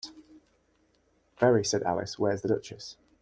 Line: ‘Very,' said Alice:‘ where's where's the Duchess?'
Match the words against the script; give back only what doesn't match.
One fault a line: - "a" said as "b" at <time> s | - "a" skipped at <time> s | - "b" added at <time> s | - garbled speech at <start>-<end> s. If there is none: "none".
- "where's" skipped at 2.4 s